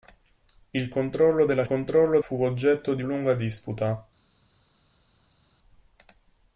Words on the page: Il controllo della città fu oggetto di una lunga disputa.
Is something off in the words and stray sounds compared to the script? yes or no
yes